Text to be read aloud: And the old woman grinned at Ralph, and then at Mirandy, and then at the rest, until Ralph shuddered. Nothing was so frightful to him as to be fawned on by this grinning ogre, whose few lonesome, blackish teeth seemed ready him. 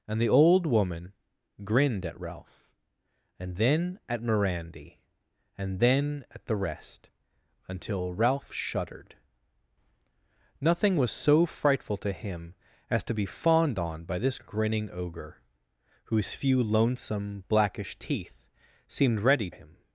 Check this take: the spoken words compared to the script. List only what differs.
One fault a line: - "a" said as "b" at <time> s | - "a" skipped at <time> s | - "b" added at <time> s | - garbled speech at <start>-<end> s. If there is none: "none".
none